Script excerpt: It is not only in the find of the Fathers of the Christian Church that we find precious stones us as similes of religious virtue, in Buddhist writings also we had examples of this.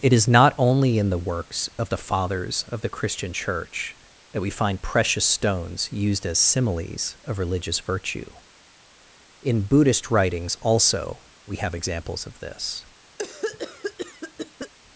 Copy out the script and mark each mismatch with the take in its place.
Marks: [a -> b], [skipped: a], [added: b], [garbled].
It is not only in the [find -> works] of the Fathers of the Christian Church that we find precious stones [us -> used] as similes of religious virtue, in Buddhist writings also we [had -> have] examples of this.